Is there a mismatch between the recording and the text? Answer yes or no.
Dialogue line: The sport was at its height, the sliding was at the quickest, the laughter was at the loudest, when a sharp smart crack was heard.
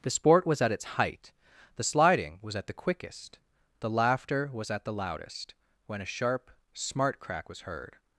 no